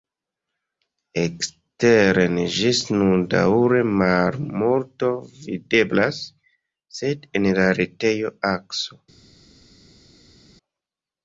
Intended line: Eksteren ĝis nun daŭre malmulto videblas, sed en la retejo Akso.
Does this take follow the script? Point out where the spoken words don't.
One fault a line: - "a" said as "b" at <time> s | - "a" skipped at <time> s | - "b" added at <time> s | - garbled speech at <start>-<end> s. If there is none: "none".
none